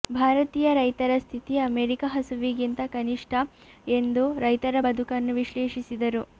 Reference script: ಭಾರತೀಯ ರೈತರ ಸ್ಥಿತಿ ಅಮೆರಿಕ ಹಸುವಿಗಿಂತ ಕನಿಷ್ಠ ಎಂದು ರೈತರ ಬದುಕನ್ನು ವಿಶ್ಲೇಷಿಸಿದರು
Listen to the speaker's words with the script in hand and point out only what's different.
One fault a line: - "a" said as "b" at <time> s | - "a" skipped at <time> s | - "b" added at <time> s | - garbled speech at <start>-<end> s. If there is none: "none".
none